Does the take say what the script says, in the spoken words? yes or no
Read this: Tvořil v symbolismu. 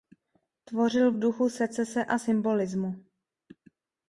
no